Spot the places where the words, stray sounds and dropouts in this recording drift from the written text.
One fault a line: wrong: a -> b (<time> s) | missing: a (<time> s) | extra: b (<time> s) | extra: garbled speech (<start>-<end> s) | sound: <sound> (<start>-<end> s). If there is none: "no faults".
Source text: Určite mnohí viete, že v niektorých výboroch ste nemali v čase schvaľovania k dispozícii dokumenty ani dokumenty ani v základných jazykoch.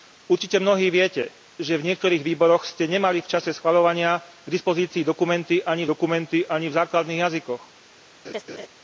sound: laugh (8.2-8.7 s)